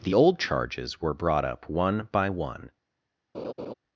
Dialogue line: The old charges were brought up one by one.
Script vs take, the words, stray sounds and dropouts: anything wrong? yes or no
yes